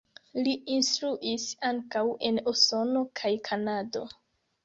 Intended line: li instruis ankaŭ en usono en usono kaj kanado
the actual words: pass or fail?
fail